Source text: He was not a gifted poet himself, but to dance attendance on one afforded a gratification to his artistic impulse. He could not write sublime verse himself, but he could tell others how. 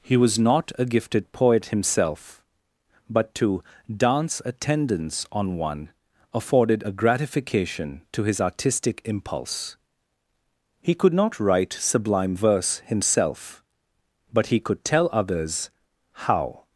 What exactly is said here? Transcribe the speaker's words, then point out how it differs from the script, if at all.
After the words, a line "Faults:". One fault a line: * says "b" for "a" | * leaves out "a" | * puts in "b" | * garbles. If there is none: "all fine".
He was not a gifted poet himself, but to dance attendance on one afforded a gratification to his artistic impulse. He could not write sublime verse himself, but he could tell others how.
Faults:
all fine